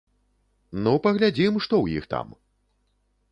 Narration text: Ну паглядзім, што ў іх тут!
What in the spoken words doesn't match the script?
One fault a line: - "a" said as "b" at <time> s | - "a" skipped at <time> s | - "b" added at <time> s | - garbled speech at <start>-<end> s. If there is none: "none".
- "тут" said as "там" at 2.2 s